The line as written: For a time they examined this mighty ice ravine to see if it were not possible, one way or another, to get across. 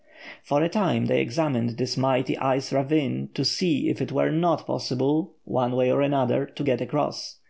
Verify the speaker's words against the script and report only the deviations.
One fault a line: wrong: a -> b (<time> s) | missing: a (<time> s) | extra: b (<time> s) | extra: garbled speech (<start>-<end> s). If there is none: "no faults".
no faults